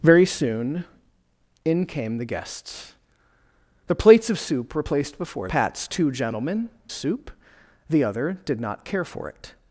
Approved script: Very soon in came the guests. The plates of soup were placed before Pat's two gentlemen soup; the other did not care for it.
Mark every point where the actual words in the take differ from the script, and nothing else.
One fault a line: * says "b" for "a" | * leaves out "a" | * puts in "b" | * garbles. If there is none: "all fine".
all fine